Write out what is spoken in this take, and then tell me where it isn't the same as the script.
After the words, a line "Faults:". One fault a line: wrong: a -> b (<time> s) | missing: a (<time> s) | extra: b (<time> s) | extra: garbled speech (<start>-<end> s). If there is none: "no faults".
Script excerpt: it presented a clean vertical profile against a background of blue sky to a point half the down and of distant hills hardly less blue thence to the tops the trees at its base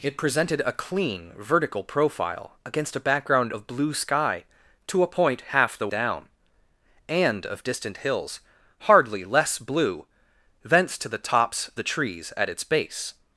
it presented a clean vertical profile against a background of blue sky to a point half the down and of distant hills hardly less blue thence to the tops the trees at its base
Faults:
no faults